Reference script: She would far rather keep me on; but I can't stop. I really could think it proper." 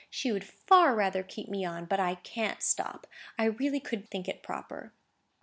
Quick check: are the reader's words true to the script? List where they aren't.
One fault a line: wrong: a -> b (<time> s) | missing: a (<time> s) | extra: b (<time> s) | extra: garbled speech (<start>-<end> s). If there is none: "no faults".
no faults